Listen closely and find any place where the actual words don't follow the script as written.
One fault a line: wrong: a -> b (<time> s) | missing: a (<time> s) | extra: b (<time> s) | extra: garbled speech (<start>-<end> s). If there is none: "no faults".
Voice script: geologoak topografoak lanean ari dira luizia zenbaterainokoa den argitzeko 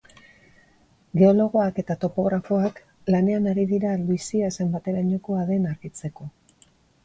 extra: eta (1.8 s)